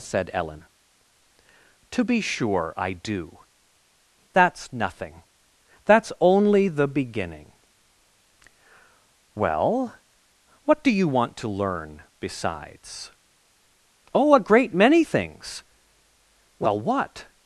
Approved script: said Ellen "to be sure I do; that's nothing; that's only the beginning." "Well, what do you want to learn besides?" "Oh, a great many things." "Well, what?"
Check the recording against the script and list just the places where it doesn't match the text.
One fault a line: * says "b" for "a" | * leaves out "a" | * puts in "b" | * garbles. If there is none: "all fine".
all fine